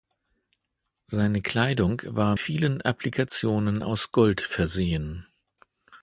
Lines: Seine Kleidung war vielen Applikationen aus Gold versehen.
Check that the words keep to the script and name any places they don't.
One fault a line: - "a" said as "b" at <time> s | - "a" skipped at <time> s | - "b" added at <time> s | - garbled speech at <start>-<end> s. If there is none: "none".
none